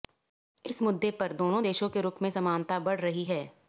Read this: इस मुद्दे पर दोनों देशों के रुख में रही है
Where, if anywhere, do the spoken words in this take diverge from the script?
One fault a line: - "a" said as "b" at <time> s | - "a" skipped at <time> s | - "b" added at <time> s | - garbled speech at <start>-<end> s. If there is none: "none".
- "समानता बढ़" added at 2.3 s